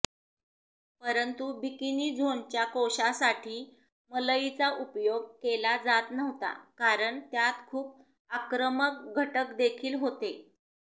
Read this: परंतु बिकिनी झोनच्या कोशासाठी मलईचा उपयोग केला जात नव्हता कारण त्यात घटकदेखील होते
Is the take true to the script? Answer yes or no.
no